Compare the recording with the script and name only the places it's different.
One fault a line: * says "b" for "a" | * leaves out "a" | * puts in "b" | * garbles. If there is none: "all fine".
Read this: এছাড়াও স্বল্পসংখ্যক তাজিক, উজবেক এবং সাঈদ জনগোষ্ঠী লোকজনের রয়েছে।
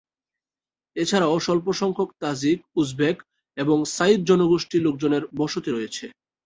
* puts in "বসতি"